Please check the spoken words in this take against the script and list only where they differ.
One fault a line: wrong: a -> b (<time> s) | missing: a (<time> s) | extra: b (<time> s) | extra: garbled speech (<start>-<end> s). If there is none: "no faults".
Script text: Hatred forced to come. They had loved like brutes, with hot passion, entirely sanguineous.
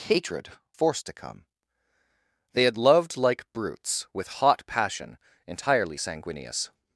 no faults